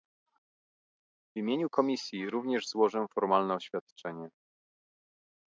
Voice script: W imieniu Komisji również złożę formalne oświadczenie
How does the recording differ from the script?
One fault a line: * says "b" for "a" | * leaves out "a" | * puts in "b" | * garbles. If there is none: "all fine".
all fine